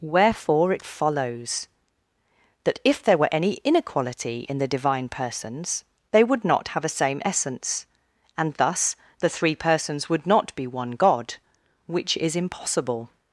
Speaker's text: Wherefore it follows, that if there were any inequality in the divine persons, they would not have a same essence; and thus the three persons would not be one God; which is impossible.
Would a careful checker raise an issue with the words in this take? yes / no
no